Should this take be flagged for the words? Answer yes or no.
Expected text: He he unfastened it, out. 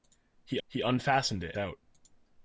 no